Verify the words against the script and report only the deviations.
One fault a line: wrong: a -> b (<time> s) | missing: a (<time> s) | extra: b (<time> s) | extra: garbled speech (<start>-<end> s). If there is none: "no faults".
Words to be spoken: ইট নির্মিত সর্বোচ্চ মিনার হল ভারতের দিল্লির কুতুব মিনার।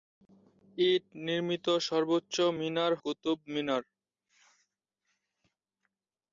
missing: হল ভারতের দিল্লির (2.9 s)